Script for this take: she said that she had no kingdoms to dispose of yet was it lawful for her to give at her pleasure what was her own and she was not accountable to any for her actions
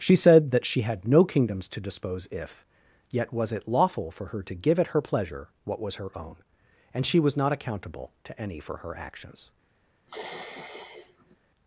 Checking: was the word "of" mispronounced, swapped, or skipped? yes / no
yes